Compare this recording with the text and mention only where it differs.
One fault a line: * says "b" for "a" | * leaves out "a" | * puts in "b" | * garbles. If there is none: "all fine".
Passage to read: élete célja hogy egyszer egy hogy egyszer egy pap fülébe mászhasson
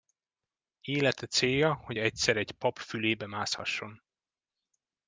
* leaves out "hogy egyszer egy"